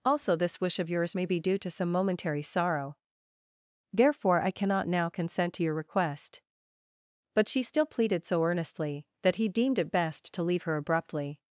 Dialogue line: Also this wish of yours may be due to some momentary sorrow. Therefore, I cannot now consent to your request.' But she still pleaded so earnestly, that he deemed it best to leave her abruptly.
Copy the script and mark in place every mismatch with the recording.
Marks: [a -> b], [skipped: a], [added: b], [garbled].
Also this wish of yours may be due to some momentary sorrow. Therefore, I cannot now consent to your request.' But she still pleaded so earnestly, that he deemed it best to leave her abruptly.